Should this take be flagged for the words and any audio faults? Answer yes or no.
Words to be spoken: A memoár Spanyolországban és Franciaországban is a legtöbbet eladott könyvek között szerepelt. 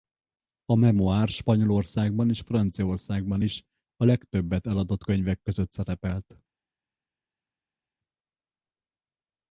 no